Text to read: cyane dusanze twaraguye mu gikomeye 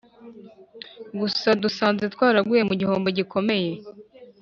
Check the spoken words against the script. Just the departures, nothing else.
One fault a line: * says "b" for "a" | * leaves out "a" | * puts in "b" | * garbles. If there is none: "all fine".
* says "gusa" for "cyane"
* puts in "gihombo"